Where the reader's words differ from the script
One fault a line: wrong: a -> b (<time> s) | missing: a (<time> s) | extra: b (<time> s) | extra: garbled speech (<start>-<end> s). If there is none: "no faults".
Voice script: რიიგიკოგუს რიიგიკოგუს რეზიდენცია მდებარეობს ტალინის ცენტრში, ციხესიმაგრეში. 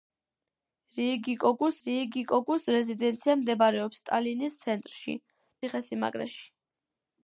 no faults